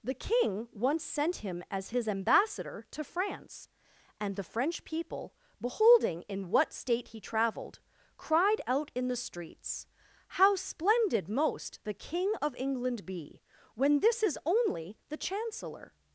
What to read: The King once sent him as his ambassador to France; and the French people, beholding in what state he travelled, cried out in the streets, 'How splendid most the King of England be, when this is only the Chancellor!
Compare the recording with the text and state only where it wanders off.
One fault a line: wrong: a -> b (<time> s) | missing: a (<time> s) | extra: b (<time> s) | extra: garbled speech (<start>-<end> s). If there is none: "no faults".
no faults